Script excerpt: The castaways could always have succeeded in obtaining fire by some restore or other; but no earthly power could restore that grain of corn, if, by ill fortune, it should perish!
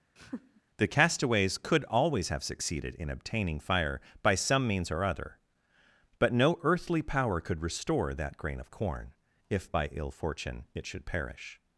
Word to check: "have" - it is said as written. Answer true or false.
true